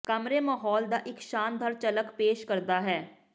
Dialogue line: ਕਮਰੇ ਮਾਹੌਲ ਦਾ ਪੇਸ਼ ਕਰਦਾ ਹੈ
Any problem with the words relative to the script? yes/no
yes